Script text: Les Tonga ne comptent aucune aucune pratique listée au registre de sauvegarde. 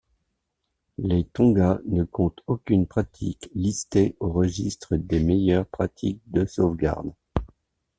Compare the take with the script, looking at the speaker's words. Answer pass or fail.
fail